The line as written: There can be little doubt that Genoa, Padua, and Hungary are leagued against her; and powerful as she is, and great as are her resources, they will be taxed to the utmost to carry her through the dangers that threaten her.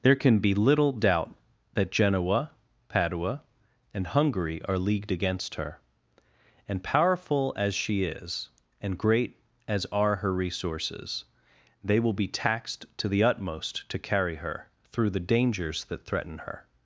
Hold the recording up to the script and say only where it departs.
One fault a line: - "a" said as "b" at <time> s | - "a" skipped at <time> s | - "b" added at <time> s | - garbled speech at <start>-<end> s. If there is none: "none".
none